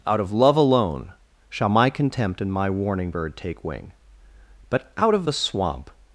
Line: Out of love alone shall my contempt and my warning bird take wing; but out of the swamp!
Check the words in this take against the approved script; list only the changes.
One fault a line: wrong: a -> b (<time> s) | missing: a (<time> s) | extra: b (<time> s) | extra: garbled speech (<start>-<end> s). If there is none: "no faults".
no faults